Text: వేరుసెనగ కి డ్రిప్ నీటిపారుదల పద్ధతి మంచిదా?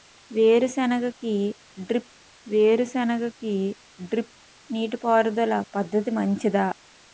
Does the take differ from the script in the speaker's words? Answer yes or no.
yes